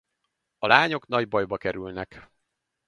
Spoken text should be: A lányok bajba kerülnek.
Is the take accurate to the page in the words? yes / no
no